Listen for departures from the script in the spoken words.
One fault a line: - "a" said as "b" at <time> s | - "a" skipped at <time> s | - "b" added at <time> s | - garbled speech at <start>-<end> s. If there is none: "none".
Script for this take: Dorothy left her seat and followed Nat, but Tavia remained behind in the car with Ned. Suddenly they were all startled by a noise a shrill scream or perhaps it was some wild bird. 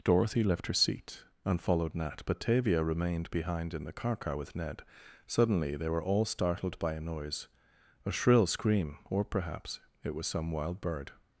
- "car" added at 4.2 s